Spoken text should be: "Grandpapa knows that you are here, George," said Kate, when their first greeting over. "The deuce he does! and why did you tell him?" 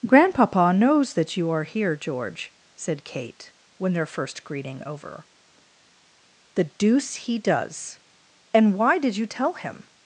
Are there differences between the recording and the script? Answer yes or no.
no